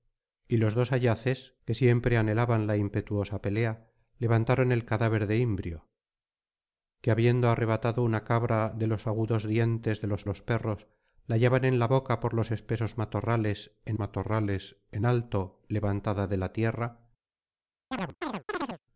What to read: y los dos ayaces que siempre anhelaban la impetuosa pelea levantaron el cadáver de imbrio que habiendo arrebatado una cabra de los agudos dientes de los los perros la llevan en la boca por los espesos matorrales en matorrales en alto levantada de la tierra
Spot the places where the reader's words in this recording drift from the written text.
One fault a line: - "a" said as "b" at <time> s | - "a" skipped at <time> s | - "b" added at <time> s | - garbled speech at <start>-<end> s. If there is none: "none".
none